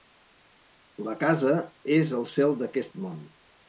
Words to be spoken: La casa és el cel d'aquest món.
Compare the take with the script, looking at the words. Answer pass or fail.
pass